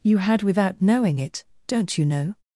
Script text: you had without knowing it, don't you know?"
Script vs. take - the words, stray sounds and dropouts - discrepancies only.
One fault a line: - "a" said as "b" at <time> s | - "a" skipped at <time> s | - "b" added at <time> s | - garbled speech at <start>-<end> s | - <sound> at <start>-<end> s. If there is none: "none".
none